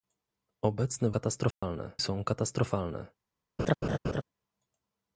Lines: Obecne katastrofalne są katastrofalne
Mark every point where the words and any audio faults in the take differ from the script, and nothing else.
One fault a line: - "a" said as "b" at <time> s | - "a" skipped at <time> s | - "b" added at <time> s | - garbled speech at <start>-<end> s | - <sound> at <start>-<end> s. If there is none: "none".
- dropout at 1.5-1.6 s
- laugh at 3.6-4.2 s